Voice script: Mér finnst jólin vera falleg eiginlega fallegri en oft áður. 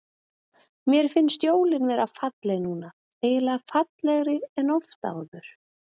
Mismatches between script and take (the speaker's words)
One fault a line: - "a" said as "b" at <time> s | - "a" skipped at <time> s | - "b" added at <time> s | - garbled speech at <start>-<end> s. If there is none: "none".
- "núna" added at 2.7 s